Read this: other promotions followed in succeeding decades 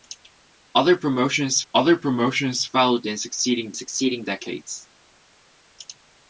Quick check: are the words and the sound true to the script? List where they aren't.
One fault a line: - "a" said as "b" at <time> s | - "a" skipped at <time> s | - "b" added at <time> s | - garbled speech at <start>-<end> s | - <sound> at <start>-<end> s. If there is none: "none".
- "other promotions" added at 1.7 s
- "succeeding" added at 3.7 s